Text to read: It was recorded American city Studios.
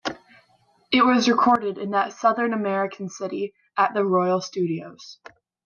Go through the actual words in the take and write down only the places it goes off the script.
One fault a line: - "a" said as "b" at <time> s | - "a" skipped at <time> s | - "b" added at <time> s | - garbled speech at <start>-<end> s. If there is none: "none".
- "in that Southern" added at 1.8 s
- "at the Royal" added at 3.8 s